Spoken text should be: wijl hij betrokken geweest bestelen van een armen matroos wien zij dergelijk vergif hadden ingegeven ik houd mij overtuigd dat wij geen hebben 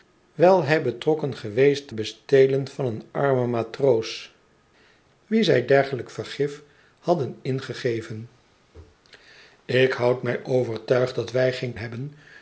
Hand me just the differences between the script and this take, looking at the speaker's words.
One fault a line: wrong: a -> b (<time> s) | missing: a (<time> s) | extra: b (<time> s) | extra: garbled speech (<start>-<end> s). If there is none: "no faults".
no faults